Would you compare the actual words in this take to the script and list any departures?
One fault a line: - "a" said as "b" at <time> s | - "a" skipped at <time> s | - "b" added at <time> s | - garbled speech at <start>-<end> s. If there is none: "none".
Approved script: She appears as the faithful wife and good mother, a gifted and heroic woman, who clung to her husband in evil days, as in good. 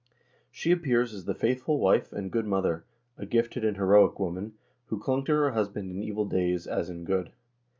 none